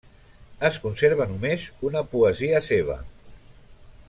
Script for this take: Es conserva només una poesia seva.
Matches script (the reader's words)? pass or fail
pass